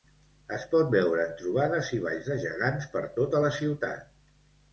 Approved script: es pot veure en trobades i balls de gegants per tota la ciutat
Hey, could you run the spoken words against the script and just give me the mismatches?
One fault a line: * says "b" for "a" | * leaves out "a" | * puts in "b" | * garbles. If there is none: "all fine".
all fine